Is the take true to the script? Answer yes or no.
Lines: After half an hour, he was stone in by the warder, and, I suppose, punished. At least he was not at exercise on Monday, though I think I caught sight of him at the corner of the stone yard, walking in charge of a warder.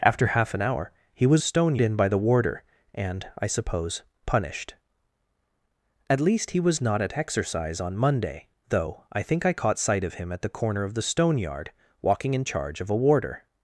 yes